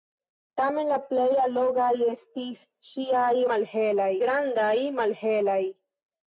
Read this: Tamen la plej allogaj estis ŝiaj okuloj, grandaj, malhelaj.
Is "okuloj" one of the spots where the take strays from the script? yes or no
yes